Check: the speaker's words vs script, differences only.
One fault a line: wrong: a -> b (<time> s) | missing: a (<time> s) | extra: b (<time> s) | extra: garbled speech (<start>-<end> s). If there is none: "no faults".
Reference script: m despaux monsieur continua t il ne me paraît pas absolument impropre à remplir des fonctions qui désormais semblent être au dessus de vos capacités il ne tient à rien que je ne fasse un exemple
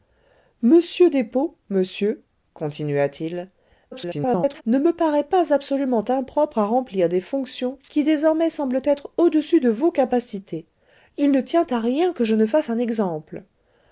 extra: garbled speech (3.9-4.6 s)